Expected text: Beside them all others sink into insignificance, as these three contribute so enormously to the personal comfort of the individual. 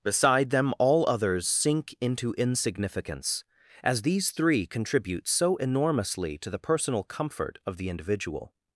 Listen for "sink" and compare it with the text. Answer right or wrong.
right